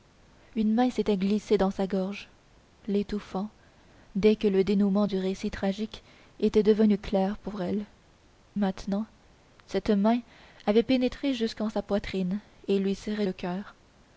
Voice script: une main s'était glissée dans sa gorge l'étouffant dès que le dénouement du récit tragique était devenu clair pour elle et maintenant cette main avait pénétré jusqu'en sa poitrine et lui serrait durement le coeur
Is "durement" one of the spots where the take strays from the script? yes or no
yes